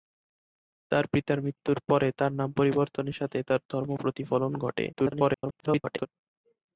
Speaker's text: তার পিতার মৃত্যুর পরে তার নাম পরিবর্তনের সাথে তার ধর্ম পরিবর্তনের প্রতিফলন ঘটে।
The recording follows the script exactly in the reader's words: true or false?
false